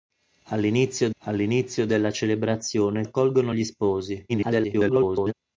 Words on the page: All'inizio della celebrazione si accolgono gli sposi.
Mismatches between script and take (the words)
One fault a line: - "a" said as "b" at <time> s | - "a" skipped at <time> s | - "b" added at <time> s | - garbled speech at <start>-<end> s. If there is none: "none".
- "all'inizio" added at 1.2 s
- "si" skipped at 3.0 s
- garbled speech at 4.3-5.3 s